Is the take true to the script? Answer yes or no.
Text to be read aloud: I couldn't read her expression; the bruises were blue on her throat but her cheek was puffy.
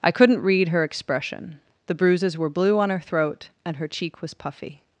no